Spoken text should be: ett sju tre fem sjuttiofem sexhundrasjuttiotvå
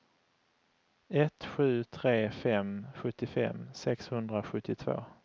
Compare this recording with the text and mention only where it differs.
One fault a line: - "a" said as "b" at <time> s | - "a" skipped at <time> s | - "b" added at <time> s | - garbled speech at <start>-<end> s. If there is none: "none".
none